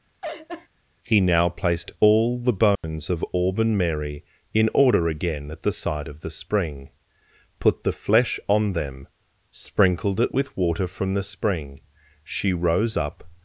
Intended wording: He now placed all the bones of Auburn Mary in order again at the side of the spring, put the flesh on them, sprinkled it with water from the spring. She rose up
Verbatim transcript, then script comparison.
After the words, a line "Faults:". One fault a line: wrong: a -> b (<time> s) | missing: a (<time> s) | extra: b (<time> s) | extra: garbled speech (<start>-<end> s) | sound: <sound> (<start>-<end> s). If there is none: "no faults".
He now placed all the bones of Auburn Mary in order again at the side of the spring, put the flesh on them, sprinkled it with water from the spring. She rose up
Faults:
sound: laugh (0.2-0.7 s)
sound: dropout (2.8-2.8 s)